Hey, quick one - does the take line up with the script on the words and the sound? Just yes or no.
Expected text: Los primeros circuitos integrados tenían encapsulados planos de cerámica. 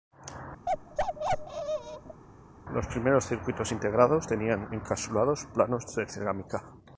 no